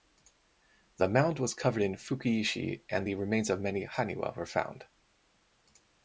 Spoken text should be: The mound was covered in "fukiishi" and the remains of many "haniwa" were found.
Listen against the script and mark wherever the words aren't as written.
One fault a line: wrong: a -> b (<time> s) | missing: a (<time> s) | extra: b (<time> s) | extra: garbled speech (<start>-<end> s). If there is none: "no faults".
no faults